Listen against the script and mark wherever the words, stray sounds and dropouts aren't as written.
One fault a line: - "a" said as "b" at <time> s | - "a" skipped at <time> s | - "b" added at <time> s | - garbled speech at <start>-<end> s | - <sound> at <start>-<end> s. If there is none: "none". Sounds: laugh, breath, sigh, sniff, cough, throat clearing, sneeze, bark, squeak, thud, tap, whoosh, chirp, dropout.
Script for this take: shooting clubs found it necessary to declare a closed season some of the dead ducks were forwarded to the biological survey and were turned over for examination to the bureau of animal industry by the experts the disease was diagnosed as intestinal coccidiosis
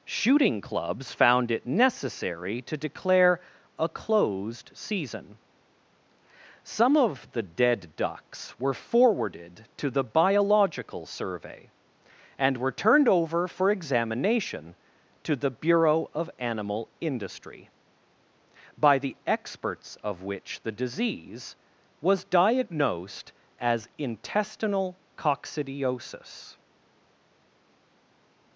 - "of which" added at 20.0 s